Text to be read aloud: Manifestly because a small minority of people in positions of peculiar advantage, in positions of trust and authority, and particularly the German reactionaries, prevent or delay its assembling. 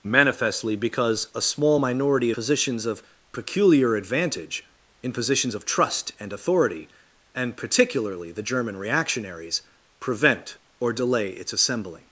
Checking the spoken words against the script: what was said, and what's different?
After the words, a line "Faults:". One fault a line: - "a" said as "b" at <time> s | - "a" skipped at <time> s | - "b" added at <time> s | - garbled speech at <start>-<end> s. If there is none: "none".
Manifestly because a small minority positions of peculiar advantage, in positions of trust and authority, and particularly the German reactionaries, prevent or delay its assembling.
Faults:
- "of people in" skipped at 2.3 s